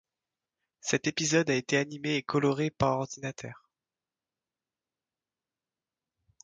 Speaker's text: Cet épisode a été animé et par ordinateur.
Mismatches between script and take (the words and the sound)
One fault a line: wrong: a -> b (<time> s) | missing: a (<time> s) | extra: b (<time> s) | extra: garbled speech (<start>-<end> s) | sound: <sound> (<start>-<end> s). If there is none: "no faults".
extra: coloré (2.2 s)